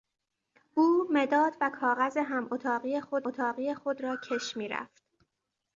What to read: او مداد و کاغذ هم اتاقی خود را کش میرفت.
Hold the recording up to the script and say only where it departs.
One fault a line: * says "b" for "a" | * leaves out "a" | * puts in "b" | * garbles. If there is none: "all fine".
* puts in "اتاقی خود"